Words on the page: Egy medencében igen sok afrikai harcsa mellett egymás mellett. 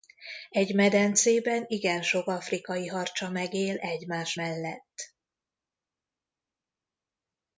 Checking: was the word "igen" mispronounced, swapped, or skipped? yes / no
no